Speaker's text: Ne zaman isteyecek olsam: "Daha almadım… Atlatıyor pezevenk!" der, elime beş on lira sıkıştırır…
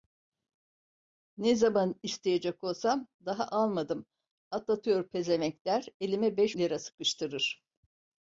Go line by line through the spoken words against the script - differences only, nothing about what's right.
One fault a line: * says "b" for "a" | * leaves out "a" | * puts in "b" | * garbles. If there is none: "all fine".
* leaves out "on"